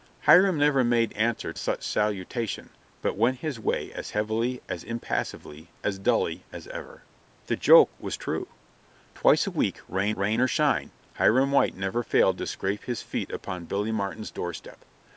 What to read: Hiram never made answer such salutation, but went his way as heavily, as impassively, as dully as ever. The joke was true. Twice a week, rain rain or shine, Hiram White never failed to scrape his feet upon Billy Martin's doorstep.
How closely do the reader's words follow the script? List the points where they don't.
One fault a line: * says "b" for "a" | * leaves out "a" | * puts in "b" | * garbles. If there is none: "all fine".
all fine